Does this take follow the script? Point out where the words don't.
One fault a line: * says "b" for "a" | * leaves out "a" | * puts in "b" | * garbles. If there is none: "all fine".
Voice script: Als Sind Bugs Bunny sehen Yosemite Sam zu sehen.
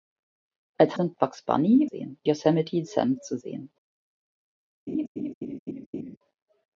all fine